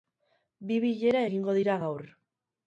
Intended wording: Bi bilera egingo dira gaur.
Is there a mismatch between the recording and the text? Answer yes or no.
no